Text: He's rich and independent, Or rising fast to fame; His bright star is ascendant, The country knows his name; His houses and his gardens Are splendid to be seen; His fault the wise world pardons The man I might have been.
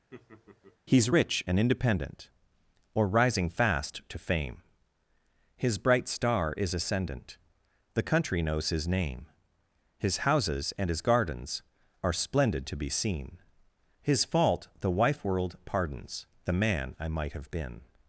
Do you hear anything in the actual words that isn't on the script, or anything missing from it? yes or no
yes